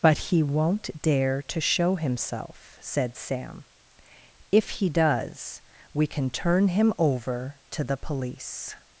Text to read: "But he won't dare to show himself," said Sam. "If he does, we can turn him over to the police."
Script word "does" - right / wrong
right